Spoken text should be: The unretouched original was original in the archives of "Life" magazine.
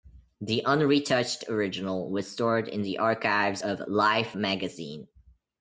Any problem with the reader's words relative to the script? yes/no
yes